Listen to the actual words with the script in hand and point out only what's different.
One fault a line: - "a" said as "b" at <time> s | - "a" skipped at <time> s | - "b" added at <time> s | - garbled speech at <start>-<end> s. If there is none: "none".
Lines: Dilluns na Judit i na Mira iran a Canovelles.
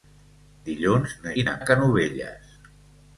- "Judit" skipped at 1.3 s
- "Mira iran" skipped at 1.5 s